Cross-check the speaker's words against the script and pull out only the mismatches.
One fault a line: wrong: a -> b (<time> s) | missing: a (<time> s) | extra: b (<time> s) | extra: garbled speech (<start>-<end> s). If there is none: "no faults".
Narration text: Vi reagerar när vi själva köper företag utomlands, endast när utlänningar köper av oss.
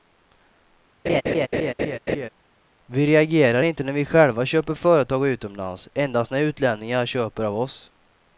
extra: inte (3.6 s)